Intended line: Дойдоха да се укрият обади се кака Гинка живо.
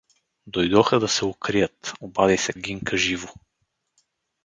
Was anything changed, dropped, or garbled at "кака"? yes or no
yes